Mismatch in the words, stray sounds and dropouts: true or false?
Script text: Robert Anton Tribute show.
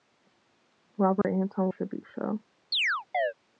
true